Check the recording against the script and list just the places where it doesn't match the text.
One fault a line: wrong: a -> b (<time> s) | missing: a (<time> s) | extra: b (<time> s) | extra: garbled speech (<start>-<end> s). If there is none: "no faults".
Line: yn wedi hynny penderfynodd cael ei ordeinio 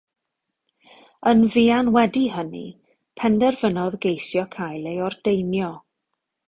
extra: fuan (1.6 s)
extra: geisio (4.1 s)